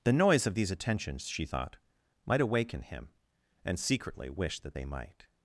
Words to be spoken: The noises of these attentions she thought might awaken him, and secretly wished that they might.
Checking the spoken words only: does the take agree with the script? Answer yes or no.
no